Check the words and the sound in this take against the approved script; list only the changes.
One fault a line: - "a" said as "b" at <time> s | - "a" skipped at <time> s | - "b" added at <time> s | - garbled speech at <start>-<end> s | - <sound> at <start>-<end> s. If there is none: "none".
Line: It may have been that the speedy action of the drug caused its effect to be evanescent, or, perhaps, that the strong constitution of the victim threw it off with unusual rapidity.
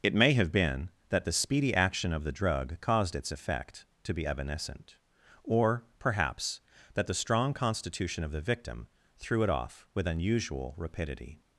none